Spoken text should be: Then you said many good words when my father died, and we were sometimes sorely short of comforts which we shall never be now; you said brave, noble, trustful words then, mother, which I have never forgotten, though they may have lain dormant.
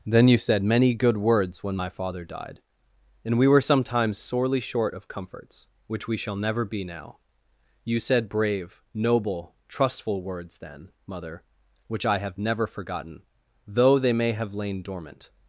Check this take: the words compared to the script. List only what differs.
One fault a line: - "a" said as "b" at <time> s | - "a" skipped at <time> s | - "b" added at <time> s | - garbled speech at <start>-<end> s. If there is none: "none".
none